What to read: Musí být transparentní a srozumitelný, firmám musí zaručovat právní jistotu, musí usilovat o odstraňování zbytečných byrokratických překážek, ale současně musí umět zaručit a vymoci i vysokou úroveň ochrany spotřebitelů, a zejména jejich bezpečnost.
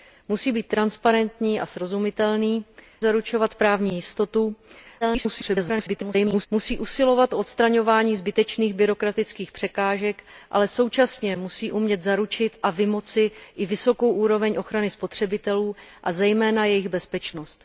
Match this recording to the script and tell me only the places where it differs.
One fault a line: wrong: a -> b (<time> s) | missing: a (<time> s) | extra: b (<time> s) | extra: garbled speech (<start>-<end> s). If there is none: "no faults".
missing: firmám musí (2.6 s)
extra: garbled speech (5.0-6.5 s)